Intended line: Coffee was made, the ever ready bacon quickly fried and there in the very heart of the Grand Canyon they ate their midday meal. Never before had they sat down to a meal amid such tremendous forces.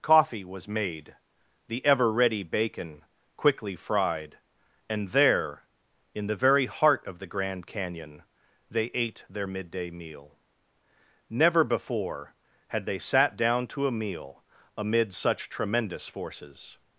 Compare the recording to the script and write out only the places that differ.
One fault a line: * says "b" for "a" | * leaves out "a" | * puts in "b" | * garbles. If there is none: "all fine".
all fine